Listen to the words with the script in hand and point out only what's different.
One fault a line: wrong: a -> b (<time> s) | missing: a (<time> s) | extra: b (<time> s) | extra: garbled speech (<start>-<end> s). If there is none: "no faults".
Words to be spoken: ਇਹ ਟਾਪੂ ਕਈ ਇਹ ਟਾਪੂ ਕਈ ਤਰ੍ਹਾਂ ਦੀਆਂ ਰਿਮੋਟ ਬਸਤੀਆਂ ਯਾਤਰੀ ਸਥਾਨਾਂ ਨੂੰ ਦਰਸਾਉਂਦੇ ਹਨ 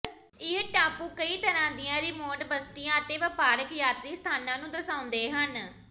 missing: ਇਹ ਟਾਪੂ ਕਈ (1.4 s)
extra: ਅਤੇ ਵਪਾਰਕ (3.0 s)